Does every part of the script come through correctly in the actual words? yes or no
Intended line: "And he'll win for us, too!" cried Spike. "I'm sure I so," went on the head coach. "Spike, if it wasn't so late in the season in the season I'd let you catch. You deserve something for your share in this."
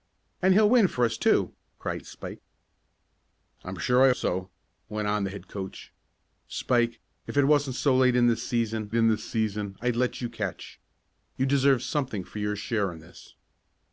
yes